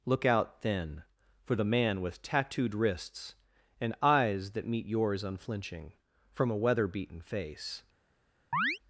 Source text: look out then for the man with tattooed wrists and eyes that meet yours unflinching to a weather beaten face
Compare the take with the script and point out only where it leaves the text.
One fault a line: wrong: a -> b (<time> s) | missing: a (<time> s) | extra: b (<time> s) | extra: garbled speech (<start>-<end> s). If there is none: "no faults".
wrong: to -> from (6.3 s)